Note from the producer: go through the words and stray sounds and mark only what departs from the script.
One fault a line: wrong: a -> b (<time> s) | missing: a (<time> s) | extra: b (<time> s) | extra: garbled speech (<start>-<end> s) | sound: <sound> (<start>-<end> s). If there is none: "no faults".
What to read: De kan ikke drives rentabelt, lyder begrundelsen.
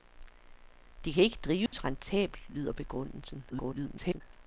sound: dropout (1.7-1.7 s)
extra: garbled speech (3.5-4.2 s)